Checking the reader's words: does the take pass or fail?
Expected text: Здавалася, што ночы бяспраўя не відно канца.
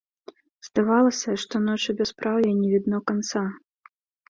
pass